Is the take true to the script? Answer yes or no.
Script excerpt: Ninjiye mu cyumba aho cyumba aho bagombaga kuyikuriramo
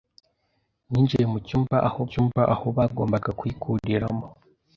yes